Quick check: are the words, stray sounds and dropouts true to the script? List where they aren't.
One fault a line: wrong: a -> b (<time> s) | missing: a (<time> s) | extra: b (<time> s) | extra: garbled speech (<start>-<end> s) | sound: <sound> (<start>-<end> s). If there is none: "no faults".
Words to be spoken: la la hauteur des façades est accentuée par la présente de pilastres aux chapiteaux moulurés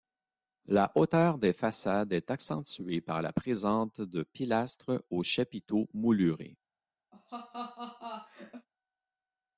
missing: la (0.9 s)
sound: laugh (7.1-8.7 s)